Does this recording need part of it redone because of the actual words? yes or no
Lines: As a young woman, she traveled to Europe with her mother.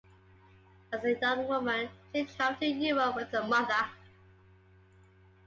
no